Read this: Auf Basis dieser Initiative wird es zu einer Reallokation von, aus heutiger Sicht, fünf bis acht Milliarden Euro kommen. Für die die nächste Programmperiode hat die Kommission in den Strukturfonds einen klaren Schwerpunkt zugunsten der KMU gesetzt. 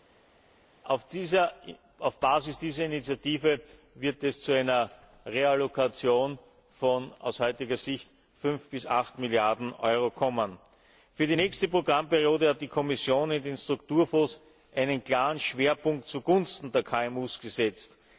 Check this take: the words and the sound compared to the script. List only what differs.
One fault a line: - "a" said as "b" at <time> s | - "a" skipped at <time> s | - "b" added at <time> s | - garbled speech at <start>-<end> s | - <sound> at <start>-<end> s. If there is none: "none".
- "die" skipped at 11.4 s